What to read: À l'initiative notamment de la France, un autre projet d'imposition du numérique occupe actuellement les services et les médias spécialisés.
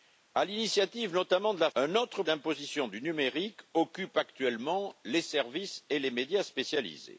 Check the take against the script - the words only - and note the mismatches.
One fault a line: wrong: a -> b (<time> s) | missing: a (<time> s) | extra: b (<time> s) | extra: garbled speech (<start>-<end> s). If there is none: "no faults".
missing: France (1.7 s)
missing: projet (2.2 s)